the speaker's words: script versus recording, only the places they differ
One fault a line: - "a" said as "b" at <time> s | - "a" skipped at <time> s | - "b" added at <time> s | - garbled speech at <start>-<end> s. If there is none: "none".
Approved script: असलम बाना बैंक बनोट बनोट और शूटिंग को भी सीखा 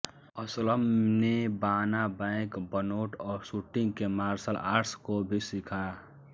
- "ने" added at 1.2 s
- "बनोट" skipped at 3.1 s
- "के मार्शल आर्ट्स" added at 3.9 s